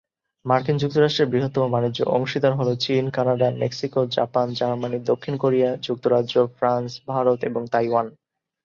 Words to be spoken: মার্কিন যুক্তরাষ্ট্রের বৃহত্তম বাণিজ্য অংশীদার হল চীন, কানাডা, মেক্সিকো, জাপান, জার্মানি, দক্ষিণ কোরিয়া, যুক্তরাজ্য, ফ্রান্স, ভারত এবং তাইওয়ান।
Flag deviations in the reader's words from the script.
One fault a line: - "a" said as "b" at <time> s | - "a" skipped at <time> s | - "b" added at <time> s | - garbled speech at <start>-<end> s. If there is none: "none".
none